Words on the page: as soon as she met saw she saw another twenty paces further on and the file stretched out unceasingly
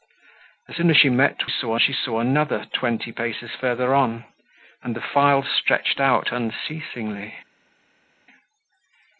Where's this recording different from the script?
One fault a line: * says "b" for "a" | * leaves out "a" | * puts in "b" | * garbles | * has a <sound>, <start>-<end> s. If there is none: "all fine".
all fine